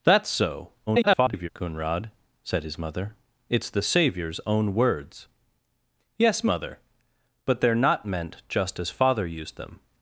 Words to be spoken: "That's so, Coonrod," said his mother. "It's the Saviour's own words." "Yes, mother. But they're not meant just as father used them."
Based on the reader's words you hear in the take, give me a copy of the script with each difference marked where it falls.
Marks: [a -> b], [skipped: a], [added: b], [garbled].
"That's so, [garbled] Coonrod," said his mother. "It's the Saviour's own words." "Yes, mother. But they're not meant just as father used them."